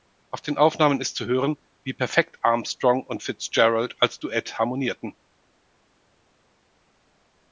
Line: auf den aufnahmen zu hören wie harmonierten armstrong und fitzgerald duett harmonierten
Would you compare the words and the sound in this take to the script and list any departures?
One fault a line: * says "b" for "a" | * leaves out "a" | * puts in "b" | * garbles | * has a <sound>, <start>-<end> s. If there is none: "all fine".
* puts in "ist"
* says "perfekt" for "harmonierten"
* puts in "als"